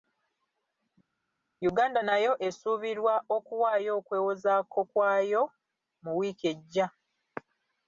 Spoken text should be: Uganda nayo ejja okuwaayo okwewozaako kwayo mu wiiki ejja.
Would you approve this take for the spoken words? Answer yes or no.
no